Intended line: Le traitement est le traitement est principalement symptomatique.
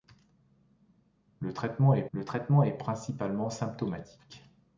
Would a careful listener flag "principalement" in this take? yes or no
no